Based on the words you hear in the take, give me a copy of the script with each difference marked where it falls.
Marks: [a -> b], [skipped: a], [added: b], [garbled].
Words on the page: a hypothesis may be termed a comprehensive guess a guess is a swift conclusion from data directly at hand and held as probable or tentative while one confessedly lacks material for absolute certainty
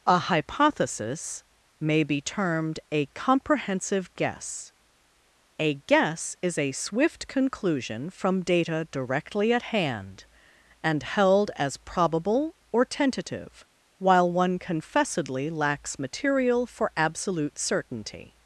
a hypothesis may be termed a comprehensive guess a guess is a swift conclusion from data directly at hand and held as probable or tentative while one confessedly lacks material for absolute certainty